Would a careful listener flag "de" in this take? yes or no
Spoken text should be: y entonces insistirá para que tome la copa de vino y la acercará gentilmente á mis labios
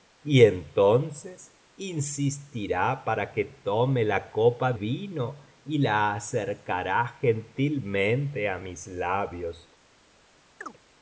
yes